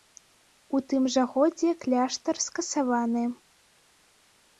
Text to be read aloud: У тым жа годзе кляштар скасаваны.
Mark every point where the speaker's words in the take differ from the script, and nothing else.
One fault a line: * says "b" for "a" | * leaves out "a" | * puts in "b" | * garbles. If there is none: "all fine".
all fine